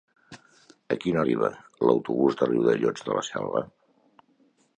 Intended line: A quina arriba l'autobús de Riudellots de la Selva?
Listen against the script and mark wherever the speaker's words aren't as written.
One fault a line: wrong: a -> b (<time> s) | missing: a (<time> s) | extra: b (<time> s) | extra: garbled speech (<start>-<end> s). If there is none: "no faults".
no faults